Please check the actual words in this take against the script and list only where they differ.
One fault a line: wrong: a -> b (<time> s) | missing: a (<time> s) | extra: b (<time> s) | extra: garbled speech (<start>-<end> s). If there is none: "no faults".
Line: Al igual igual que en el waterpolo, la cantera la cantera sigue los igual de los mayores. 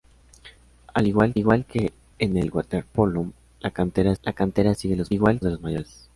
no faults